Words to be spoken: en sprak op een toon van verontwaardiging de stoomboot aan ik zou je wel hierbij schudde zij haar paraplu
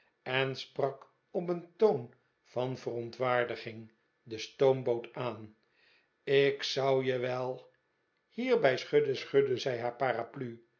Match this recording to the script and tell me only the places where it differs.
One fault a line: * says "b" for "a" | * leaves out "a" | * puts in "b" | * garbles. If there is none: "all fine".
* puts in "schudde"